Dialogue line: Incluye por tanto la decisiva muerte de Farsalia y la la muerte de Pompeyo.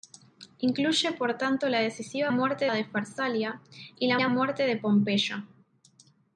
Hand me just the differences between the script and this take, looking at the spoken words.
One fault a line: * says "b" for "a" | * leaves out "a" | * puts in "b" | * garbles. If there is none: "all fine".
all fine